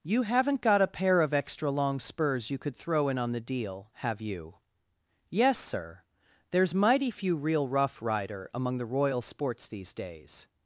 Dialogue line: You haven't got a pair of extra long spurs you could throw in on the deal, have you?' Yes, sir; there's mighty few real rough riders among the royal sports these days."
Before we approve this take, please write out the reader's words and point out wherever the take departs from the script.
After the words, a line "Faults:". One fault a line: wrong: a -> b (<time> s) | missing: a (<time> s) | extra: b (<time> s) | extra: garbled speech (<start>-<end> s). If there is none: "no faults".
You haven't got a pair of extra long spurs you could throw in on the deal, have you?' Yes, sir; there's mighty few real rough rider among the royal sports these days."
Faults:
wrong: riders -> rider (8.0 s)